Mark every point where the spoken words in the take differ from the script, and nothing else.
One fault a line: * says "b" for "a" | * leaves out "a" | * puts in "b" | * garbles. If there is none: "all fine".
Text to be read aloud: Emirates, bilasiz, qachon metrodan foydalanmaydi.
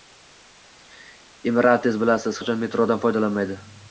all fine